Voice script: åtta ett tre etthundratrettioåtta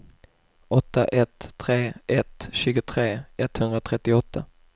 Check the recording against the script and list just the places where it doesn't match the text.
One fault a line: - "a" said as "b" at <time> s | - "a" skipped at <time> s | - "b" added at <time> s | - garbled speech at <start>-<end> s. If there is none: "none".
- "ett tjugotre" added at 2.1 s